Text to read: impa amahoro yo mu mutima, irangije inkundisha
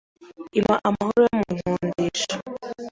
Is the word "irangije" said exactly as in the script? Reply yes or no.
no